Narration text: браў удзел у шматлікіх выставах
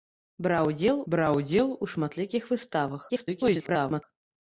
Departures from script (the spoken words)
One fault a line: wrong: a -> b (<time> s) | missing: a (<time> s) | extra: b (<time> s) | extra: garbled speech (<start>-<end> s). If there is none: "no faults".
extra: браў удзел (1.1 s)
extra: garbled speech (3.1-4.0 s)